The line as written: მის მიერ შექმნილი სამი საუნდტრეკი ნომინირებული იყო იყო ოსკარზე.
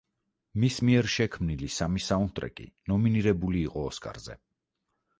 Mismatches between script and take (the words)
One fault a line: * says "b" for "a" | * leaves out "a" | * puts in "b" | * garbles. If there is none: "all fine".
* leaves out "იყო"